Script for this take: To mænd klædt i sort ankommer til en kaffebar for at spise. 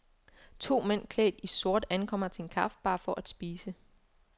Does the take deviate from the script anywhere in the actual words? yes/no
no